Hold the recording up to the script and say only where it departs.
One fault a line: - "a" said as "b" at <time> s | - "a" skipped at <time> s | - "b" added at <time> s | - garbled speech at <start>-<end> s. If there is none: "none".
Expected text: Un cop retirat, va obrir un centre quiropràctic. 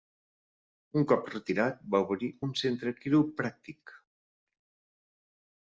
none